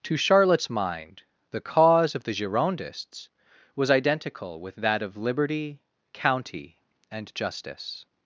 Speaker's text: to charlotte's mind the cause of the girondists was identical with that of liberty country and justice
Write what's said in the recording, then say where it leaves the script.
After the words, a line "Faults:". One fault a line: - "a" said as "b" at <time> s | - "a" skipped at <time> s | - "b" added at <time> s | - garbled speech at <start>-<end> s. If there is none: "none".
to charlotte's mind the cause of the girondists was identical with that of liberty county and justice
Faults:
- "country" said as "county" at 6.1 s